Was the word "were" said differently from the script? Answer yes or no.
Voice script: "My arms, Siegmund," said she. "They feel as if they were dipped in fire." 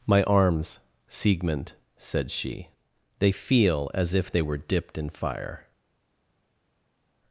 no